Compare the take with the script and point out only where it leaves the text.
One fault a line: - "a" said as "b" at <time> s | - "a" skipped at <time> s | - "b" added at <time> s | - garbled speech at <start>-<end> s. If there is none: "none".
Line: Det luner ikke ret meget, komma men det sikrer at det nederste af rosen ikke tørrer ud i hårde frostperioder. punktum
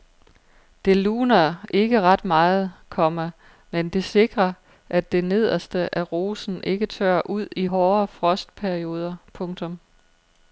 none